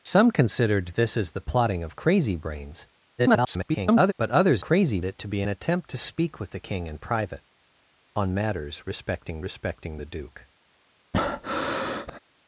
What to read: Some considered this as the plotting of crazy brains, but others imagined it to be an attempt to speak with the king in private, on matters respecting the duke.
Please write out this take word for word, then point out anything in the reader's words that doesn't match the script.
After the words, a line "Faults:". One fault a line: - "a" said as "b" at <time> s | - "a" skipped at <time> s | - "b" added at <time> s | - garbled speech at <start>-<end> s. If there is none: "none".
Some considered this as the plotting of crazy brains, [garbled] but others crazy it to be an attempt to speak with the king in private, on matters respecting respecting the duke.
Faults:
- garbled speech at 3.2-4.1 s
- "imagined" said as "crazy" at 4.6 s
- "respecting" added at 9.4 s